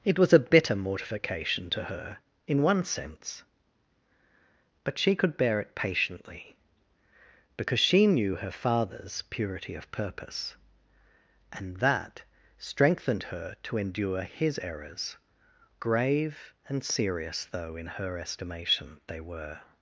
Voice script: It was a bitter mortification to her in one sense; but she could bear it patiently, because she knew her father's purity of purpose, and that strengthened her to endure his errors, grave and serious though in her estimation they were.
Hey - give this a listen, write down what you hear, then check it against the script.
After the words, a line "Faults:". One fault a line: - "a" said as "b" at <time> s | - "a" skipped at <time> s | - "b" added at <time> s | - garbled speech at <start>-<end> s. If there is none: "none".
It was a bitter mortification to her in one sense; but she could bear it patiently, because she knew her father's purity of purpose, and that strengthened her to endure his errors, grave and serious though in her estimation they were.
Faults:
none